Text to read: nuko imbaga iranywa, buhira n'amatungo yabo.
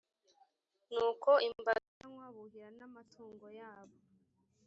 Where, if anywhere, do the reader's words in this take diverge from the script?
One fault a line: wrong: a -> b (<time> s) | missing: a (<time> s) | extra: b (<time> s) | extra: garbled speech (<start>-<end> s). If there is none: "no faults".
no faults